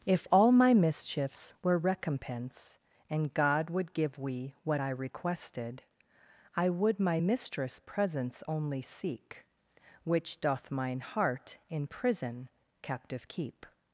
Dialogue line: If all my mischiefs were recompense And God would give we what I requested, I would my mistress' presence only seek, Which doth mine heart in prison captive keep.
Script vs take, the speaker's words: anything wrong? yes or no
no